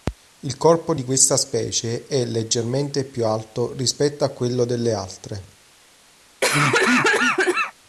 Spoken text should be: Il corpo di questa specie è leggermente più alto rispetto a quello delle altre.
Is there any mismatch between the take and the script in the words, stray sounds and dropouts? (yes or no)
yes